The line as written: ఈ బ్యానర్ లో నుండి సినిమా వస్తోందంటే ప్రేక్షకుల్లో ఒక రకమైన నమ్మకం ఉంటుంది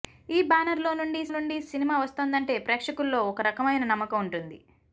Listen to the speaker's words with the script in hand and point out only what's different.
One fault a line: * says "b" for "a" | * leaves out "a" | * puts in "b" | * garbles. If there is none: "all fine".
* puts in "నుండి"